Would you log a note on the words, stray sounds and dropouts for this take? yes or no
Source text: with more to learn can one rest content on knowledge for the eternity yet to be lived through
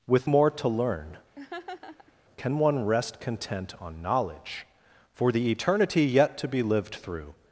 yes